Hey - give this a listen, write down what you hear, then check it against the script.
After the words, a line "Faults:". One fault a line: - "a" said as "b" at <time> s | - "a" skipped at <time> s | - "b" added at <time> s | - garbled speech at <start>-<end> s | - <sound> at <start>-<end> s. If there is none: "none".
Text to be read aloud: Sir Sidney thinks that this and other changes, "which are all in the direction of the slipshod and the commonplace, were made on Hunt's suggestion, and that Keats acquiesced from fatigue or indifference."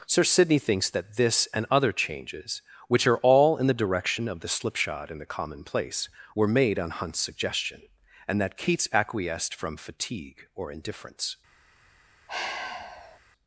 Sir Sidney thinks that this and other changes, "which are all in the direction of the slipshod and the commonplace, were made on Hunt's suggestion, and that Keats acquiesced from fatigue or indifference."
Faults:
- sigh at 12.3-13.2 s